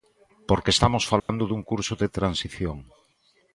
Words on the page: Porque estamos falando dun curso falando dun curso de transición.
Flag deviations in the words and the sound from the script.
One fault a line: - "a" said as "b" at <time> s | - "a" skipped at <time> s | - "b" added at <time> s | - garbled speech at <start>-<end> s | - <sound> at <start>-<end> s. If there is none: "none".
- dropout at 1.2-1.3 s
- "falando dun curso" skipped at 1.9 s